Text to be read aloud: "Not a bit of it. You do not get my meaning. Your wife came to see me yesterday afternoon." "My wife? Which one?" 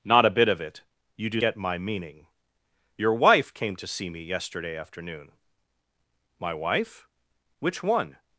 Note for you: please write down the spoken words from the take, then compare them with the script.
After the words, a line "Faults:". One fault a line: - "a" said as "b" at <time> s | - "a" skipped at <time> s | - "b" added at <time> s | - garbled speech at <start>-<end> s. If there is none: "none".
"Not a bit of it. You do get my meaning. Your wife came to see me yesterday afternoon." "My wife? Which one?"
Faults:
- "not" skipped at 1.4 s